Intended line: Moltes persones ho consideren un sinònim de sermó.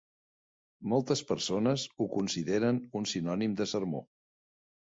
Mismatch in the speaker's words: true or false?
false